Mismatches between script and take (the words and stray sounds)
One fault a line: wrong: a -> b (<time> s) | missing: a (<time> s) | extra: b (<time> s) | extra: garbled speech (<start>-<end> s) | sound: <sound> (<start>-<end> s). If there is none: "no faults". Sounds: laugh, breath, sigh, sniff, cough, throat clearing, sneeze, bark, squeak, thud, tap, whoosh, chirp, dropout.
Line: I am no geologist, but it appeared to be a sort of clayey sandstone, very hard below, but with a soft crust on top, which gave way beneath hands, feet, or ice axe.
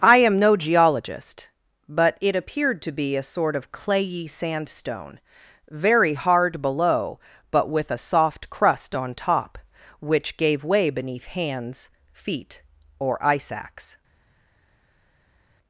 no faults